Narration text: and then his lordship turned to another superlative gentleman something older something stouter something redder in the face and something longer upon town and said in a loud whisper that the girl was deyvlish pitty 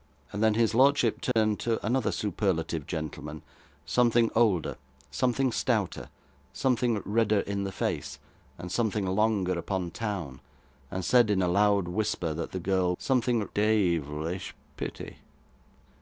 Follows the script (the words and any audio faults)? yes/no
no